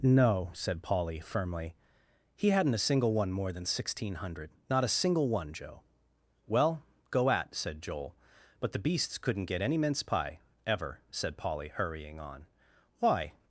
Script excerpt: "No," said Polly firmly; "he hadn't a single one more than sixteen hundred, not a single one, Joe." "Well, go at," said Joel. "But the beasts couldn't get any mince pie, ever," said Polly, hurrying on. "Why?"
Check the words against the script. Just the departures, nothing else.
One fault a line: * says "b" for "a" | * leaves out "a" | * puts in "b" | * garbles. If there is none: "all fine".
all fine